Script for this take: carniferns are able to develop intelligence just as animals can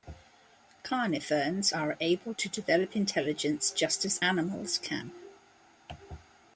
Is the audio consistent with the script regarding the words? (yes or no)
yes